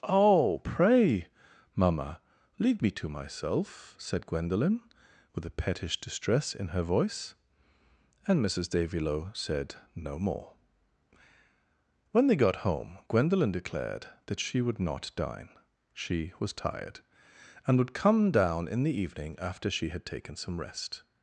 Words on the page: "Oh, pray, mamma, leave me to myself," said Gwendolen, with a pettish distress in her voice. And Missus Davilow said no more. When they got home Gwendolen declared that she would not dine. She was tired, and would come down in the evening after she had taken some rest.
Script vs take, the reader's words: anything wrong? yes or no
no